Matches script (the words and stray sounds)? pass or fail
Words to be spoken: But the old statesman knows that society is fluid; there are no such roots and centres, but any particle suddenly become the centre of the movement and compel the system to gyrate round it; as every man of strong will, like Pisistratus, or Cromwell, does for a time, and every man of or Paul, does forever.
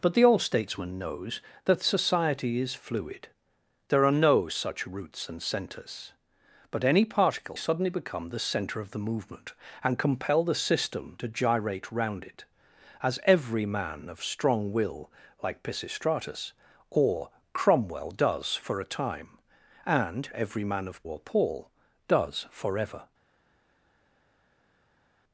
pass